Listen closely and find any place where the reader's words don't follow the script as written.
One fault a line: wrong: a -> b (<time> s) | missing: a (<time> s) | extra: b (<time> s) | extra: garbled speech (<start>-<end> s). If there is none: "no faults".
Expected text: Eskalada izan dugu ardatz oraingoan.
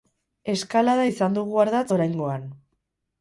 no faults